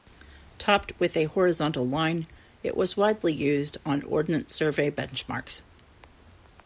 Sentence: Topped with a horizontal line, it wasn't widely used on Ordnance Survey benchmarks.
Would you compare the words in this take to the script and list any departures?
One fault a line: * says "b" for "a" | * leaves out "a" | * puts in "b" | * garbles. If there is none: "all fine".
* says "was" for "wasn't"